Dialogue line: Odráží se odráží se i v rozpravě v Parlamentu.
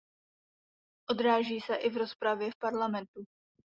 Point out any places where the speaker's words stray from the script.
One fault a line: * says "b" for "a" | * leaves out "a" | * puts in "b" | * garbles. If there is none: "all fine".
* leaves out "odráží se"